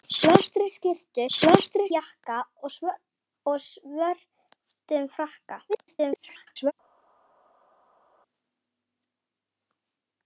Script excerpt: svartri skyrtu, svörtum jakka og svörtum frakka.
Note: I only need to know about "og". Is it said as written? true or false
true